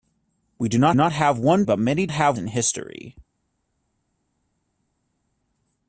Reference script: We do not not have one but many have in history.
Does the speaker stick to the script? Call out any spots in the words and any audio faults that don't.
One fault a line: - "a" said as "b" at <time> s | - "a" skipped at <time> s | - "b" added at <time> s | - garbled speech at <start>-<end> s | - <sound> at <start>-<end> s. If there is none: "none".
none